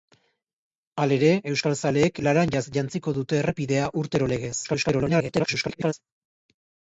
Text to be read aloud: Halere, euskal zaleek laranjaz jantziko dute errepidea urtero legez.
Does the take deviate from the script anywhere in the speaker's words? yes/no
yes